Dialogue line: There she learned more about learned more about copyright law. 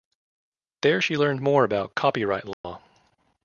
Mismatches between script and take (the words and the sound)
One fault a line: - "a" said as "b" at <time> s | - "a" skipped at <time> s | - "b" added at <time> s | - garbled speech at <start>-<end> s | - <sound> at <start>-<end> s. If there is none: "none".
- "learned more about" skipped at 1.9 s
- dropout at 2.5-2.6 s